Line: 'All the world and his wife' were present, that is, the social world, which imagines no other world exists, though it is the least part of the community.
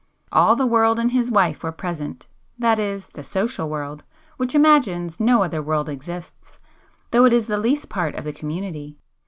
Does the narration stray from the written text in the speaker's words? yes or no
no